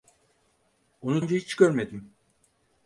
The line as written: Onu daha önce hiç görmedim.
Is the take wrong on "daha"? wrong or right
wrong